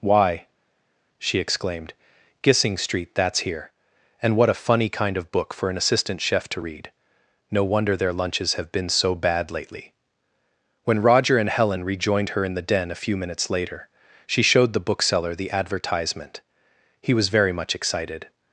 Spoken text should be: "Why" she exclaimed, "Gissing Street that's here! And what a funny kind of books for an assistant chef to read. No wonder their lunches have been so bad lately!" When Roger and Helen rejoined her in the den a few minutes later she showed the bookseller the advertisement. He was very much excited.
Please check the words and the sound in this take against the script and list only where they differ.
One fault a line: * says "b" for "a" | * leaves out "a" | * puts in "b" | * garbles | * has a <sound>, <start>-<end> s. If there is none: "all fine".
* says "book" for "books"